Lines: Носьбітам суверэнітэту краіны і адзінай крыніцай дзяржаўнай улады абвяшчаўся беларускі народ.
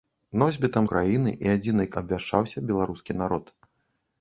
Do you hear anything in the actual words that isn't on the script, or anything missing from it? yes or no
yes